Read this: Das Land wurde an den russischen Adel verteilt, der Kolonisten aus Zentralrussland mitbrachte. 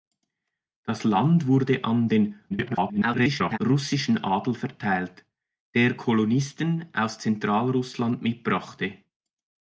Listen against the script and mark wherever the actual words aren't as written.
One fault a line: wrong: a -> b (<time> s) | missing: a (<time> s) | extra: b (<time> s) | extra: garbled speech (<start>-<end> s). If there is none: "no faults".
extra: garbled speech (2.5-3.6 s)